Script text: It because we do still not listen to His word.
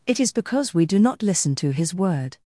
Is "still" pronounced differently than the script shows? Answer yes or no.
yes